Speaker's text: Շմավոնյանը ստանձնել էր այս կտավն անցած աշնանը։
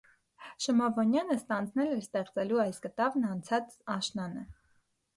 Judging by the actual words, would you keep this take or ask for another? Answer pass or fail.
fail